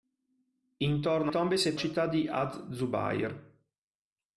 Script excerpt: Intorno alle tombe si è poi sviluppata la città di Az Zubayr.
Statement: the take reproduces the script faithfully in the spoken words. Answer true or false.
false